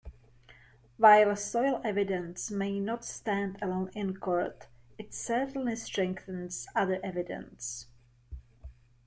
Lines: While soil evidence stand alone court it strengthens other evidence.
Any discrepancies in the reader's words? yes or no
yes